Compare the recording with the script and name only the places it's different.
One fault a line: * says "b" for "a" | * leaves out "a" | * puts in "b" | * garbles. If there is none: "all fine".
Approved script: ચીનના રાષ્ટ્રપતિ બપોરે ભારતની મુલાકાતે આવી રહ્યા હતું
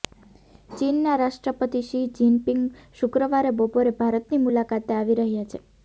* puts in "શી જિનપિંગ શુક્રવારે"
* says "છે" for "હતું"